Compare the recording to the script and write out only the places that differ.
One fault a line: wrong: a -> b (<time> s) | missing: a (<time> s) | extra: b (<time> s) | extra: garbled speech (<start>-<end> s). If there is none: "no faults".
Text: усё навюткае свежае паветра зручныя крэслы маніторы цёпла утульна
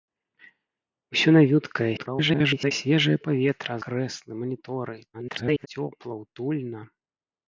extra: garbled speech (2.0-2.7 s)
missing: зручныя (3.8 s)
extra: garbled speech (5.1-5.7 s)